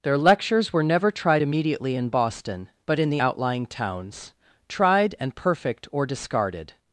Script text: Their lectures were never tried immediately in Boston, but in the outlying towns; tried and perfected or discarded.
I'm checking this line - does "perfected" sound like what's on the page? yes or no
no